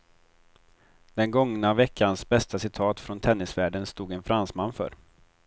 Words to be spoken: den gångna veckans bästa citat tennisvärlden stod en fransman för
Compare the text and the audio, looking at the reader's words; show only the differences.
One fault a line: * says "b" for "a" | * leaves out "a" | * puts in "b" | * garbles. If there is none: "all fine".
* puts in "från"